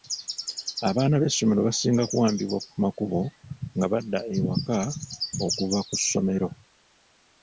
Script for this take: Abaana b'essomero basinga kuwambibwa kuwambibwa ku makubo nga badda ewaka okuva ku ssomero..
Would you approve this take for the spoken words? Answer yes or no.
no